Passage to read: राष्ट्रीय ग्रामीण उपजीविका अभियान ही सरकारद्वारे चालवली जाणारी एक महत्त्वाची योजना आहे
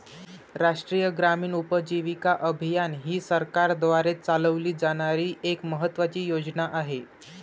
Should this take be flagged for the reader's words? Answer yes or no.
no